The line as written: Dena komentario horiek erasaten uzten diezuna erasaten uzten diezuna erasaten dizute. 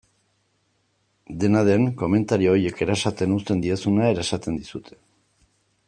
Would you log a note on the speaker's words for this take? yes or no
yes